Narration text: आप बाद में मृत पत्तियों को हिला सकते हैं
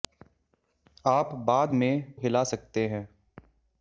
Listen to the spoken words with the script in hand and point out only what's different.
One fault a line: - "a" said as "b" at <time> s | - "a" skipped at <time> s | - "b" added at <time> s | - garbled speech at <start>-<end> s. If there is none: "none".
- "मृत पत्तियों को" skipped at 2.1 s